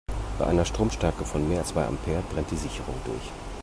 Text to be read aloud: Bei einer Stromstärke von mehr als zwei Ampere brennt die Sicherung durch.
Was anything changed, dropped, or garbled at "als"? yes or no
yes